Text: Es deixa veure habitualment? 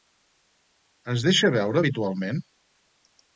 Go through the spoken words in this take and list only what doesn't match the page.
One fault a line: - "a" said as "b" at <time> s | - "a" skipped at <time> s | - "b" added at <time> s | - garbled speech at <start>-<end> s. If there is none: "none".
none